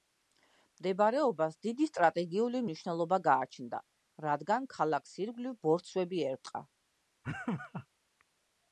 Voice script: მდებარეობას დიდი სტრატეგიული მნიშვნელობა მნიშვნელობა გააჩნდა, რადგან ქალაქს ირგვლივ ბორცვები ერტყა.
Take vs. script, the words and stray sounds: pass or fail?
fail